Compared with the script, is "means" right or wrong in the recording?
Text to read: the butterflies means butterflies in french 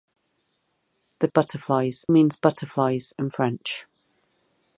right